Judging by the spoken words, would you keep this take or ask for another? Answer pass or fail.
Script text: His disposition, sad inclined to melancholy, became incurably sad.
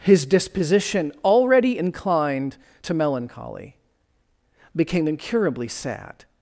fail